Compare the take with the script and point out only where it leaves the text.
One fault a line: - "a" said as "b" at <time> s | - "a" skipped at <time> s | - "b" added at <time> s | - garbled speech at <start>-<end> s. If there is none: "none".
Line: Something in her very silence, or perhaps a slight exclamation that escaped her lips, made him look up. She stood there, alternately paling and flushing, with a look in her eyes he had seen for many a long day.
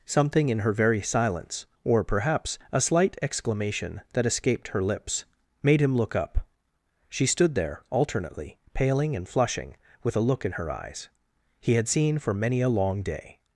none